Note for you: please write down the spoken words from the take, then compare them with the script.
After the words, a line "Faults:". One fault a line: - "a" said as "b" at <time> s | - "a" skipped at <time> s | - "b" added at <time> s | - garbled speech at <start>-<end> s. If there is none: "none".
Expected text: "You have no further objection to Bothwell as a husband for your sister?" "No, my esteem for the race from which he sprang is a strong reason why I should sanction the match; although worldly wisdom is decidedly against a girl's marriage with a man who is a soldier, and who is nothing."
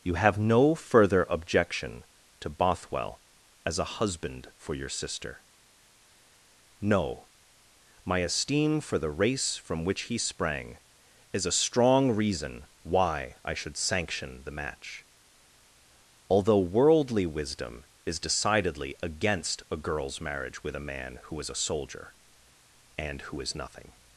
"You have no further objection to Bothwell as a husband for your sister?" "No, my esteem for the race from which he sprang is a strong reason why I should sanction the match; although worldly wisdom is decidedly against a girl's marriage with a man who is a soldier, and who is nothing."
Faults:
none